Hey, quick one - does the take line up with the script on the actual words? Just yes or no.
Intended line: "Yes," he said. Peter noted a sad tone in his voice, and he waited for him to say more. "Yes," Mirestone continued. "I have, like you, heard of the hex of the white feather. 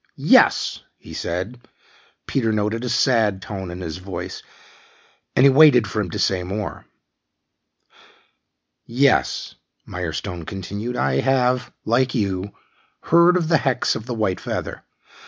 yes